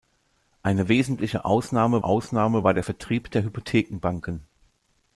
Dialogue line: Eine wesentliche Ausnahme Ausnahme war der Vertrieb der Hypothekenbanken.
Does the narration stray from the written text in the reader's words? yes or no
no